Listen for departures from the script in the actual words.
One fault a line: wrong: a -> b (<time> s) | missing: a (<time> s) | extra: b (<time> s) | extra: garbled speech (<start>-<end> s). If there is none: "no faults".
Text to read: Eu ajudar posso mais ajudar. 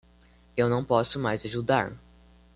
wrong: ajudar -> não (0.7 s)